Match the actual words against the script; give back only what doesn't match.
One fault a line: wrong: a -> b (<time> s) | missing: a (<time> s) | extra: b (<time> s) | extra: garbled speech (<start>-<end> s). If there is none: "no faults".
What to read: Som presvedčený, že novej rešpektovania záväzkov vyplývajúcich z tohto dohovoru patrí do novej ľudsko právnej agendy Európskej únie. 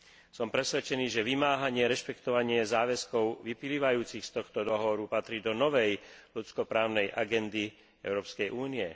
wrong: novej -> vymáhanie (1.3 s)